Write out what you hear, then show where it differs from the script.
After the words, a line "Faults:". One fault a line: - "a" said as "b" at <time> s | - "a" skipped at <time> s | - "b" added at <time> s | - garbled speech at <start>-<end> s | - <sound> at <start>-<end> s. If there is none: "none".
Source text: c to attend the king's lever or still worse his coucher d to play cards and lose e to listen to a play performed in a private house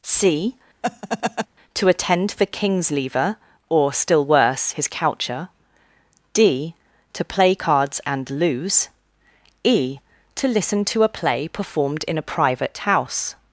c to attend the king's lever or still worse his coucher d to play cards and lose e to listen to a play performed in a private house
Faults:
- laugh at 0.8-1.5 s